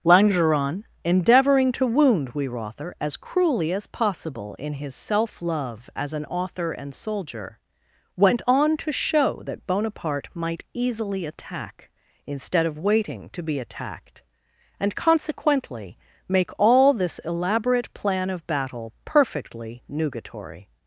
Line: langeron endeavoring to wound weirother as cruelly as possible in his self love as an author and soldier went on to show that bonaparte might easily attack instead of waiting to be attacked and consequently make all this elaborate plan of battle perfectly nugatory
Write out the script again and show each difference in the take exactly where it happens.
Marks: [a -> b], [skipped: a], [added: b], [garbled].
langeron endeavoring to wound weirother as cruelly as possible in his self love as an author and soldier went on to show that bonaparte might easily attack instead of waiting to be attacked and consequently make all this elaborate plan of battle perfectly nugatory